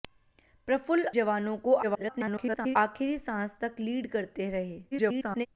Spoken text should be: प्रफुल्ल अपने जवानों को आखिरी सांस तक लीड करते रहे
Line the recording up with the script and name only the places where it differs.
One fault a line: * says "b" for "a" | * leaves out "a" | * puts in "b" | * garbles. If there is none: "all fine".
* leaves out "अपने"
* garbles
* garbles